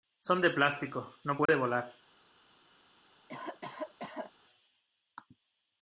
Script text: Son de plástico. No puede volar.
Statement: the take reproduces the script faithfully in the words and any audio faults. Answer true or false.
false